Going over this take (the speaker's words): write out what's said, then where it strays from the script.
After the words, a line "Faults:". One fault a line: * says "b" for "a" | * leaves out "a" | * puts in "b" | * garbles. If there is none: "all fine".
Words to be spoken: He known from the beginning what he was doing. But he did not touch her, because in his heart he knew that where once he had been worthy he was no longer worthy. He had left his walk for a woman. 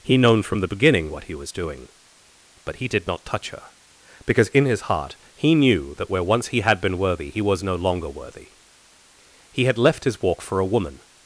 He known from the beginning what he was doing. But he did not touch her, because in his heart he knew that where once he had been worthy he was no longer worthy. He had left his walk for a woman.
Faults:
all fine